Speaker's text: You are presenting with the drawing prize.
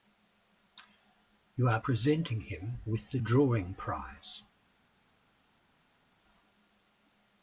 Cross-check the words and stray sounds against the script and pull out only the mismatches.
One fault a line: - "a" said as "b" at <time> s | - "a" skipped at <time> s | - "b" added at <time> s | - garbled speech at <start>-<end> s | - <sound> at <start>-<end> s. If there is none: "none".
- "him" added at 2.4 s